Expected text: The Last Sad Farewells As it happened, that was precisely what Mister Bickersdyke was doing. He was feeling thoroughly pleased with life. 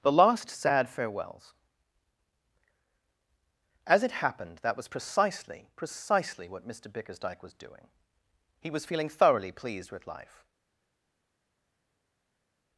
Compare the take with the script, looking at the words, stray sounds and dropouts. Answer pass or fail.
fail